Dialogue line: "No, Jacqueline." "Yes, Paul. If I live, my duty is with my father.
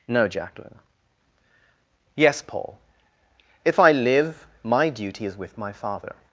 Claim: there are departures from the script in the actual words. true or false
false